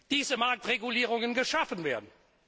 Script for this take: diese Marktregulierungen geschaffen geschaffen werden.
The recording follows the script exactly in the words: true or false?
false